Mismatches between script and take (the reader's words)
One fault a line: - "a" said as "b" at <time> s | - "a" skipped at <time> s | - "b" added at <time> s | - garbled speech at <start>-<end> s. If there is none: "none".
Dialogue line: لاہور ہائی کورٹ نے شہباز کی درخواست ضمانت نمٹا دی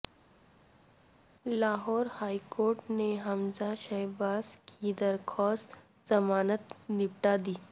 - "حمزہ" added at 3.3 s